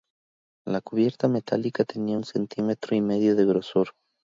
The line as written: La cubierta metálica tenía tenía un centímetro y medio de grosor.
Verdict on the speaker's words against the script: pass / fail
fail